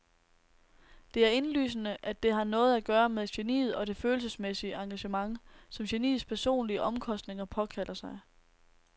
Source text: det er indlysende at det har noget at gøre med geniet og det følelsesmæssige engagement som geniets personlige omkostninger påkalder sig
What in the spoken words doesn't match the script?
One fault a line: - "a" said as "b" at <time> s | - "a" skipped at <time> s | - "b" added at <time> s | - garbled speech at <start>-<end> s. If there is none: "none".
none